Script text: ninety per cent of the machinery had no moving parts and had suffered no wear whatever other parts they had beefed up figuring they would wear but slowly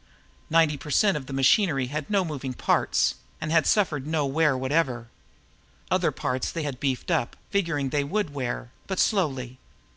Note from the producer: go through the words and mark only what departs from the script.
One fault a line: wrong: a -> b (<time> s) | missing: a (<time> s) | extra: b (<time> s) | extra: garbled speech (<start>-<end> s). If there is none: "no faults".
no faults